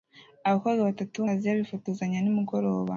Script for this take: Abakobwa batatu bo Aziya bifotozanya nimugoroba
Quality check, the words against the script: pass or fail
pass